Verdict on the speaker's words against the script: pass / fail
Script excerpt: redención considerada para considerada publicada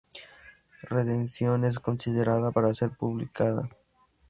fail